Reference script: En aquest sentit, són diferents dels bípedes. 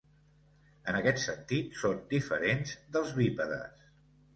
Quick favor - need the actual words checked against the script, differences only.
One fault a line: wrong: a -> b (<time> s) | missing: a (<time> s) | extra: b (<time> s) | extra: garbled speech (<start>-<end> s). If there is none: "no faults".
no faults